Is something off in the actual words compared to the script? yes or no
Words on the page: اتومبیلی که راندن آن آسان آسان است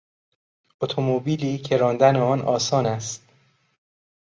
yes